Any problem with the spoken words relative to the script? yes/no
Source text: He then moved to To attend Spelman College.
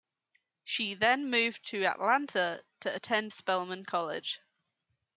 yes